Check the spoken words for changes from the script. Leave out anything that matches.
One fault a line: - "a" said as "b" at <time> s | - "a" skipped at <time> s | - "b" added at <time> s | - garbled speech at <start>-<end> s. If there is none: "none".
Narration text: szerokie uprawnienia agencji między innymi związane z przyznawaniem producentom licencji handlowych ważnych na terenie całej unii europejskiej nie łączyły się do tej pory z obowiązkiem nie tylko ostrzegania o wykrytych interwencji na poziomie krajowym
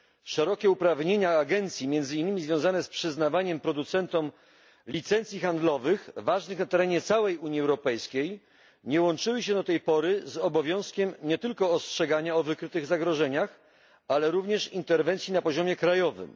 - "zagrożeniach ale również" added at 12.8 s